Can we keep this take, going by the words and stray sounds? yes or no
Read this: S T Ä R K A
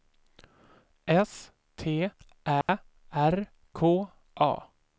no